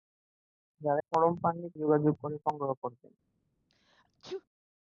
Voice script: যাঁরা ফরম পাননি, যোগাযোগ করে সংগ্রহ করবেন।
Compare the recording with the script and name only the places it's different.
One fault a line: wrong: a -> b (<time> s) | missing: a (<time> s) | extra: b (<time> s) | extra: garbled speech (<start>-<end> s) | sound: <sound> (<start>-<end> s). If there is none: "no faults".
sound: sneeze (3.7-4.4 s)